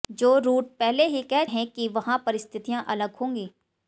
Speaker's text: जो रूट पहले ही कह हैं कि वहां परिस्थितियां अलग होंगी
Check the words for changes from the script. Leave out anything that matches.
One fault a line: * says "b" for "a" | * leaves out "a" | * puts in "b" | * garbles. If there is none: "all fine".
all fine